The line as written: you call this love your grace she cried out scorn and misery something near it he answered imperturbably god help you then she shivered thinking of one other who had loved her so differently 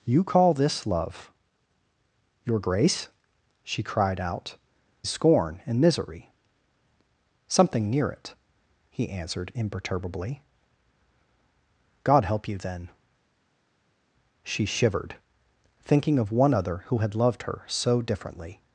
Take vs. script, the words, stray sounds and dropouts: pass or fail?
pass